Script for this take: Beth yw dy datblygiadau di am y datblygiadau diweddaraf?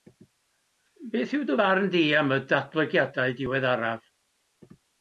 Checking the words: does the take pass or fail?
fail